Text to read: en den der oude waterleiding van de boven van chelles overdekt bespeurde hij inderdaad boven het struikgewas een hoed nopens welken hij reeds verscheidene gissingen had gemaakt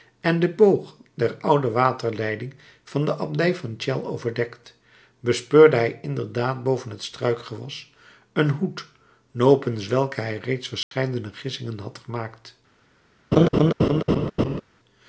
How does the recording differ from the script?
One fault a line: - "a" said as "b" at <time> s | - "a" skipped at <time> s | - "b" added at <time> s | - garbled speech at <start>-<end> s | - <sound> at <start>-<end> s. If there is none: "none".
- "boog" added at 0.6 s
- "boven" said as "abdij" at 3.2 s
- dropout at 10.8-10.9 s
- laugh at 13.3-14.6 s